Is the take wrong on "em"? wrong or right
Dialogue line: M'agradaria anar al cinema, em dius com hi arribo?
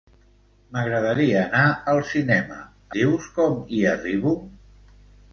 wrong